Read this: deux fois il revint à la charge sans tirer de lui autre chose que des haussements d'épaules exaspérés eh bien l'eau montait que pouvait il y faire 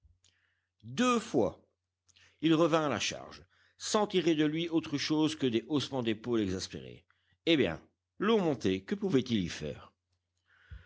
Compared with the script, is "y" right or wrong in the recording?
right